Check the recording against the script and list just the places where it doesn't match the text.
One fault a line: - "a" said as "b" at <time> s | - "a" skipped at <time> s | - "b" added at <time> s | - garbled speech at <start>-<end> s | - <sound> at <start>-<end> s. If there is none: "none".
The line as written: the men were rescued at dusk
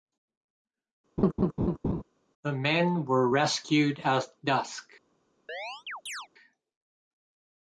- laugh at 1.2-2.0 s
- chirp at 5.5-6.3 s